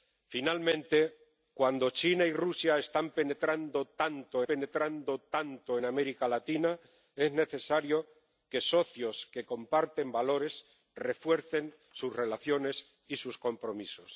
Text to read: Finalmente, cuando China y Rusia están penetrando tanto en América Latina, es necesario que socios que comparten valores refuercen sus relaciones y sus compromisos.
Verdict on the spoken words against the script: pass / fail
fail